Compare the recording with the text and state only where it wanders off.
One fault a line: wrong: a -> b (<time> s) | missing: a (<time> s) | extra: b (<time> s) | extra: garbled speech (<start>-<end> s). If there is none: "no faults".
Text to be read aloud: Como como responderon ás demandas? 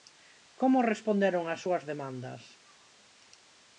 missing: como (0.9 s)
extra: súas (1.6 s)